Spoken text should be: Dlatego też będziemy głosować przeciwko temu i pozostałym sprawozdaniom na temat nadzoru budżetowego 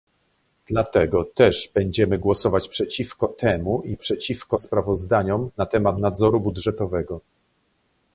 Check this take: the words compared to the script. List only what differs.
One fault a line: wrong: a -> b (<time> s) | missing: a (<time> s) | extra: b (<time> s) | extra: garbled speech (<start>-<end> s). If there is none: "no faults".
wrong: pozostałym -> przeciwko (4.0 s)